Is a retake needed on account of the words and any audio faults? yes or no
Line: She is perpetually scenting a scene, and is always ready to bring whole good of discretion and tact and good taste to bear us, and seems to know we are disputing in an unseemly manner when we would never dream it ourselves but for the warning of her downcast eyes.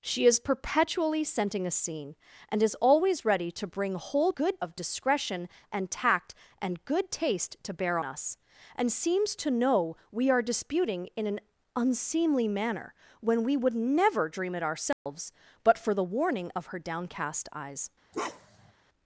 yes